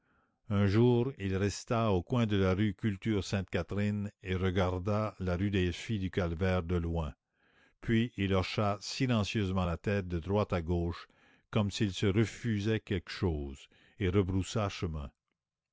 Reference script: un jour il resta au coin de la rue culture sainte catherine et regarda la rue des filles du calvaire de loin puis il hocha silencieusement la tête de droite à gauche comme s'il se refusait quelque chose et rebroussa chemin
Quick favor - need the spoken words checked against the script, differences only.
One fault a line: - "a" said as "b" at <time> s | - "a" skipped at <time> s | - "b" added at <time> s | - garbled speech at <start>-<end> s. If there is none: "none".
none